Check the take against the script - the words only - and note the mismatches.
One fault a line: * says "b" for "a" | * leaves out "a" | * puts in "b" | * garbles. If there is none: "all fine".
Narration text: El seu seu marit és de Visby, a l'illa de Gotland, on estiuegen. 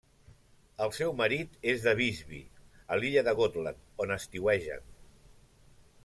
* leaves out "seu"